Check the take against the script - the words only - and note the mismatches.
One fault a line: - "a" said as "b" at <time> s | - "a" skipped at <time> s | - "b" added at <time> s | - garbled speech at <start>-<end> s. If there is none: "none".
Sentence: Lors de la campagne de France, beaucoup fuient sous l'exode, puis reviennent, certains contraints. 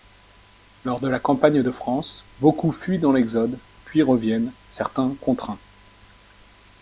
- "sous" said as "dans" at 3.0 s